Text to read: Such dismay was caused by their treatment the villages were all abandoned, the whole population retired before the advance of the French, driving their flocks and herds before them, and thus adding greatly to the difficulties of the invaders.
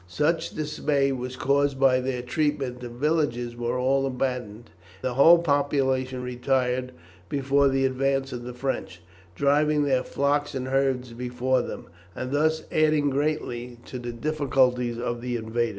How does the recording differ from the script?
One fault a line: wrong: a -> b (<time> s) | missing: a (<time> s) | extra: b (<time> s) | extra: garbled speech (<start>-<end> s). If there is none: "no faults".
no faults